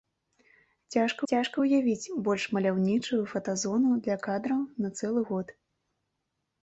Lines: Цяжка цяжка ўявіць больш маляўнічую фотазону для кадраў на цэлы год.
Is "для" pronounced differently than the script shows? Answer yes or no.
no